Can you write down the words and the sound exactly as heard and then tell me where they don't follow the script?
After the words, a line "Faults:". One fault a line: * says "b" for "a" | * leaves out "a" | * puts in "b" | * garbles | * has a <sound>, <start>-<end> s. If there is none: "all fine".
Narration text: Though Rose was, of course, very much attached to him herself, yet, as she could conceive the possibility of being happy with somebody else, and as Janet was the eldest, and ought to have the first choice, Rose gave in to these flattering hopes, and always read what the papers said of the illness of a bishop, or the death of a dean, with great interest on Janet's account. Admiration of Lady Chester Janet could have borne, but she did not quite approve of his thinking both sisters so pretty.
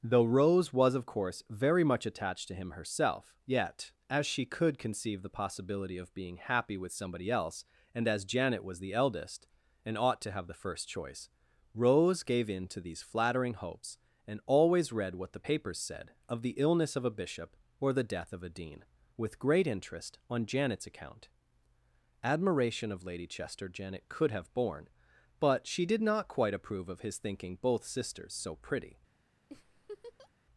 Though Rose was, of course, very much attached to him herself, yet, as she could conceive the possibility of being happy with somebody else, and as Janet was the eldest, and ought to have the first choice, Rose gave in to these flattering hopes, and always read what the papers said of the illness of a bishop, or the death of a dean, with great interest on Janet's account. Admiration of Lady Chester Janet could have borne, but she did not quite approve of his thinking both sisters so pretty.
Faults:
* has a laugh, 29.5-30.3 s